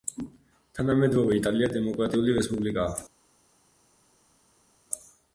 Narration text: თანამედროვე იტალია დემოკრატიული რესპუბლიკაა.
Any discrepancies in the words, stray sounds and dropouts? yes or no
no